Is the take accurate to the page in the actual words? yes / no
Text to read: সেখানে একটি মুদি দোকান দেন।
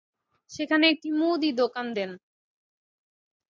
yes